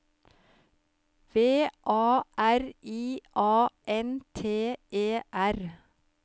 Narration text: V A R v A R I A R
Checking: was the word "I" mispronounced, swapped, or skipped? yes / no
yes